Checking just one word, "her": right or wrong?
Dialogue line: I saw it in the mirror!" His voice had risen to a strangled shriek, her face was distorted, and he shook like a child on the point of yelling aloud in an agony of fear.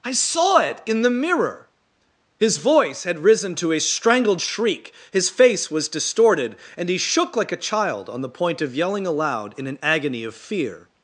wrong